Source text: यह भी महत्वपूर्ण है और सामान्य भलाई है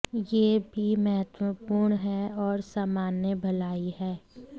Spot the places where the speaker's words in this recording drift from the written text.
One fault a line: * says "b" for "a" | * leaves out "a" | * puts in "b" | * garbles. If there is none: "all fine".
all fine